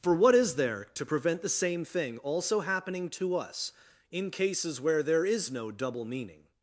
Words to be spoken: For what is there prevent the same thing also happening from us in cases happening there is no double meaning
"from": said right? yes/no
no